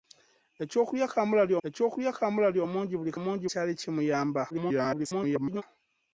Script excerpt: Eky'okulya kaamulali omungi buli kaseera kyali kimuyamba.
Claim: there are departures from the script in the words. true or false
true